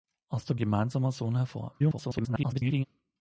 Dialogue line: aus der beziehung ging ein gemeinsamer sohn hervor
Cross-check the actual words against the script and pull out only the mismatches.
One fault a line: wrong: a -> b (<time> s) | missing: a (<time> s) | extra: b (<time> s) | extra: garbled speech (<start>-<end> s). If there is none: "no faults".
missing: beziehung ging ein (0.6 s)
extra: garbled speech (1.8-2.9 s)